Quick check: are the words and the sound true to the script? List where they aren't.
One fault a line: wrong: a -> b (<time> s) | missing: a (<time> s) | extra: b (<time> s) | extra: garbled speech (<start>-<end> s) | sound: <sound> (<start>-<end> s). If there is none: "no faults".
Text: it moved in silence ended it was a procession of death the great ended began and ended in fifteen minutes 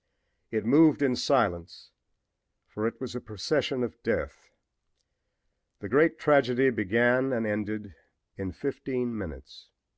wrong: ended -> for (2.6 s)
wrong: ended -> tragedy (6.2 s)